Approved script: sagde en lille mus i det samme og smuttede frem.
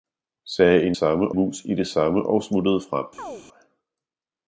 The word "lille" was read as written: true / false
false